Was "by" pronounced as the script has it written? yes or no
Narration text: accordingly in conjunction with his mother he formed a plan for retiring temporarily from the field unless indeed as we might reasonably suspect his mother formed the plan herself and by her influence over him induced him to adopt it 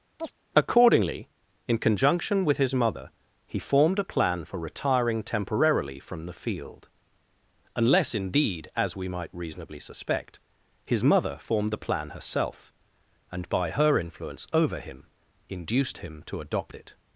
yes